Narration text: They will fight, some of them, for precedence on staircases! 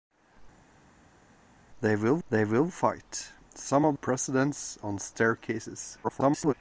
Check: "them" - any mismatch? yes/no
yes